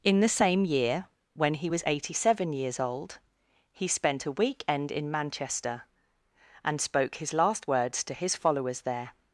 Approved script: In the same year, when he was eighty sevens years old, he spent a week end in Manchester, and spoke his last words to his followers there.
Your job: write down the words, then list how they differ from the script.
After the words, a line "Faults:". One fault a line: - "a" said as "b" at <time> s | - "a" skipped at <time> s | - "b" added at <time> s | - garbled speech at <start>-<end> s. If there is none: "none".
In the same year, when he was eighty seven years old, he spent a week end in Manchester, and spoke his last words to his followers there.
Faults:
- "sevens" said as "seven" at 2.1 s